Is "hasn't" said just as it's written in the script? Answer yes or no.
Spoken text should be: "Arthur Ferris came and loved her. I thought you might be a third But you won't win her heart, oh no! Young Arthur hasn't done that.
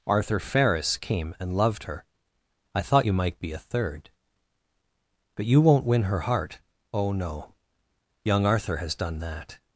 no